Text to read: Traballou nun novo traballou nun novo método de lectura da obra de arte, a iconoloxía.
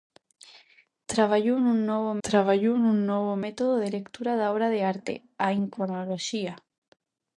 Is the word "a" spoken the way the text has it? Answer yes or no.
yes